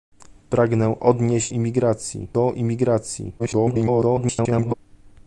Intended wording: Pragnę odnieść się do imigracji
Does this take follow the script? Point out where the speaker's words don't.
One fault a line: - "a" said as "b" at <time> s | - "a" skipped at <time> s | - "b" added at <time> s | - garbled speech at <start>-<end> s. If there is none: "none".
- "się" said as "imigracji" at 1.5 s
- garbled speech at 3.4-4.7 s